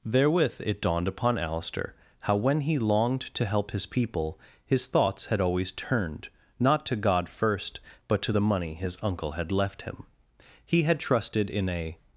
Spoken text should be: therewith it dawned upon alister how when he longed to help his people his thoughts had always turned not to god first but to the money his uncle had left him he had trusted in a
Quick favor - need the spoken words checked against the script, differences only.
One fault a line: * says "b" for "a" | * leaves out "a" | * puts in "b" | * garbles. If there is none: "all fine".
all fine